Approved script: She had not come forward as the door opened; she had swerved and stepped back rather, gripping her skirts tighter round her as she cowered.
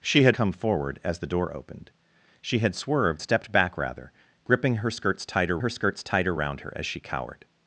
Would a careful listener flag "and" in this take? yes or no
yes